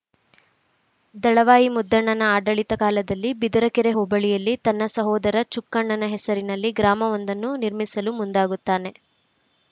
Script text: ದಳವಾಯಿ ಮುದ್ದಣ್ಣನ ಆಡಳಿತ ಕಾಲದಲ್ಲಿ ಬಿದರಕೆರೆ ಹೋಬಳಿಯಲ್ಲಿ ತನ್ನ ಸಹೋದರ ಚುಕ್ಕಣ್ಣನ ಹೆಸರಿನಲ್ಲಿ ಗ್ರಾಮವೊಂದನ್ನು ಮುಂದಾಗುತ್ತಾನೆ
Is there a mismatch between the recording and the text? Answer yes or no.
yes